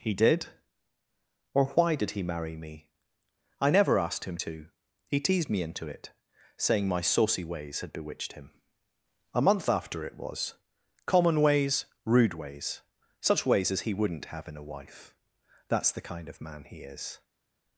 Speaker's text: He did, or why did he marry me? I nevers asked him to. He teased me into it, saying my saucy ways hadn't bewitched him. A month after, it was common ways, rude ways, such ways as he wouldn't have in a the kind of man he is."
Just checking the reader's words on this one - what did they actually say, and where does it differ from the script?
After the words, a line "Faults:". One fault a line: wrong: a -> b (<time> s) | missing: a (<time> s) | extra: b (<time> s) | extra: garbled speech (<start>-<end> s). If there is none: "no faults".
He did, or why did he marry me? I never asked him to. He teased me into it, saying my saucy ways had bewitched him. A month after, it was common ways, rude ways, such ways as he wouldn't have in a wife. That's the kind of man he is."
Faults:
wrong: nevers -> never (3.7 s)
wrong: hadn't -> had (7.8 s)
extra: wife That's (14.6 s)